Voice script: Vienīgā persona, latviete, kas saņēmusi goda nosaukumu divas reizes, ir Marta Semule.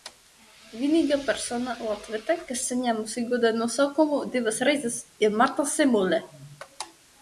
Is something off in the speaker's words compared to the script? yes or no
no